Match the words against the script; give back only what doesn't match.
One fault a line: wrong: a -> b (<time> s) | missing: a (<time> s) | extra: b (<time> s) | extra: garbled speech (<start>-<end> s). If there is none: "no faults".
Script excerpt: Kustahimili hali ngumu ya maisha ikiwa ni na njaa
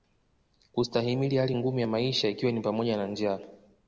extra: pamoja (2.6 s)